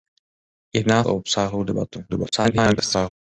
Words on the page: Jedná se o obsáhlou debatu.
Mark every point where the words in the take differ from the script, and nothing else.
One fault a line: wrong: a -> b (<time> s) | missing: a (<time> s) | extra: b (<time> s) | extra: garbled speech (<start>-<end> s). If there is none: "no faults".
missing: se (1.1 s)
extra: garbled speech (2.1-3.1 s)